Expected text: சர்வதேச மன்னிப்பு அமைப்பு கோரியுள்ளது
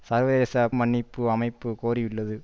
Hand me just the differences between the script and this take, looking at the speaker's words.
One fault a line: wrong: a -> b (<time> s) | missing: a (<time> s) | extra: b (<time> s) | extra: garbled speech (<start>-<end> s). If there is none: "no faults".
no faults